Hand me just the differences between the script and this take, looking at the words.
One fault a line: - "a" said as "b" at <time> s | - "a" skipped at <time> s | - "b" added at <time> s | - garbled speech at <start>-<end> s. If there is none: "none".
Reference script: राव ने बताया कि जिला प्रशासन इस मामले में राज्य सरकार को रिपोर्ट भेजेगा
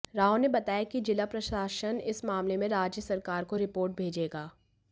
none